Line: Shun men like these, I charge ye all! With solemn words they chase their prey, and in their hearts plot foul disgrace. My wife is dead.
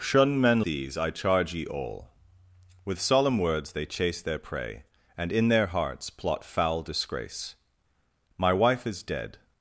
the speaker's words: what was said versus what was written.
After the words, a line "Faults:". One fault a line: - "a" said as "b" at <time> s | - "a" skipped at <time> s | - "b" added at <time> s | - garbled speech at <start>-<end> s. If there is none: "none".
Shun men these, I charge ye all! With solemn words they chase their prey, and in their hearts plot foul disgrace. My wife is dead.
Faults:
- "like" skipped at 0.6 s